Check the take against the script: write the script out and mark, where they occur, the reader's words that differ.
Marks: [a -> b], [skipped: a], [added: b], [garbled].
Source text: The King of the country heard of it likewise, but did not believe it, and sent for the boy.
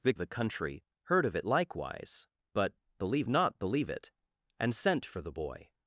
The [skipped: King of] the country heard of it likewise, but [did -> believe] not believe it, and sent for the boy.